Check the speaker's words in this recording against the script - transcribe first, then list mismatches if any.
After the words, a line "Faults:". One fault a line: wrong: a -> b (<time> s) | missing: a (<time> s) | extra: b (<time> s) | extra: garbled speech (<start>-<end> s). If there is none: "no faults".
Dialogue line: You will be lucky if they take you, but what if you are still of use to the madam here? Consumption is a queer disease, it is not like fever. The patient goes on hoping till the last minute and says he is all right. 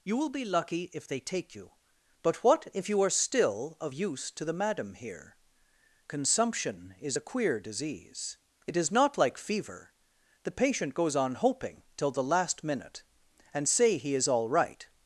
You will be lucky if they take you, but what if you are still of use to the madam here? Consumption is a queer disease, it is not like fever. The patient goes on hoping till the last minute and say he is all right.
Faults:
wrong: says -> say (13.7 s)